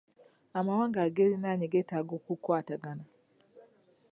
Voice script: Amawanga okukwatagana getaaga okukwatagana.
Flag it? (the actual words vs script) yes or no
yes